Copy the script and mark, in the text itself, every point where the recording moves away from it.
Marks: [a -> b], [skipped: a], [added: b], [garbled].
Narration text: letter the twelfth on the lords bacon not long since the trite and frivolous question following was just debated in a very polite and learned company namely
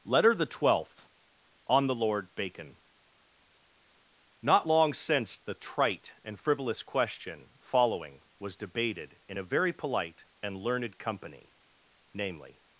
letter the twelfth on the [lords -> lord] bacon not long since the trite and frivolous question following was [skipped: just] debated in a very polite and learned company namely